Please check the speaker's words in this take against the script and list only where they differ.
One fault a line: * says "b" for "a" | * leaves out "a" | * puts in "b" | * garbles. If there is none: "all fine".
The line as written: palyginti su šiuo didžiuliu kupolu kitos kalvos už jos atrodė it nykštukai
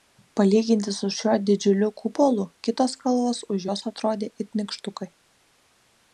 all fine